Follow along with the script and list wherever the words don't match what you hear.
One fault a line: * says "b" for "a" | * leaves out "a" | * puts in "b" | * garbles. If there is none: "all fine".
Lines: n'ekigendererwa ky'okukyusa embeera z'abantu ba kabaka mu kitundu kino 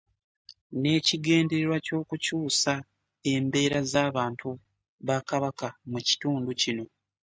all fine